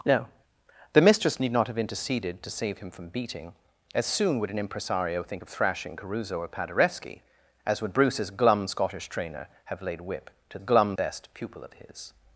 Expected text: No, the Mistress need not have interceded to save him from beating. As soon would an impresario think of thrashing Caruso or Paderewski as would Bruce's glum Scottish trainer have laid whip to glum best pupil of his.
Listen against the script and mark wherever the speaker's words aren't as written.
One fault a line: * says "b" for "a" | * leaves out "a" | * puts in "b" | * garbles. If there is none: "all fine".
all fine